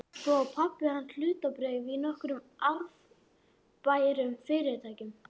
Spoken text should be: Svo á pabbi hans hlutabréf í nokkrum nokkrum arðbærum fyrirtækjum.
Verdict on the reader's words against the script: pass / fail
fail